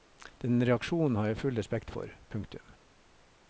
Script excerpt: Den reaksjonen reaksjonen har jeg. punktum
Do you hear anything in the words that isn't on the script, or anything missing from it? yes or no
yes